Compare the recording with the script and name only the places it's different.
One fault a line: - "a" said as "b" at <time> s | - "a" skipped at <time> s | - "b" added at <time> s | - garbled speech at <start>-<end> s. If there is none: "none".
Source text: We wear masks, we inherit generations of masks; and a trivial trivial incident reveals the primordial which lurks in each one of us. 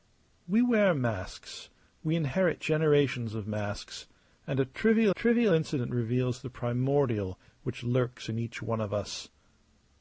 none